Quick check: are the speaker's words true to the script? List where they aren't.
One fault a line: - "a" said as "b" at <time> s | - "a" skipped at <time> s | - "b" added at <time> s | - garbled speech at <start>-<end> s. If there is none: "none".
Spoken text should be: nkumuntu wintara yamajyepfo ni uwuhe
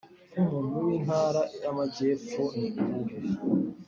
none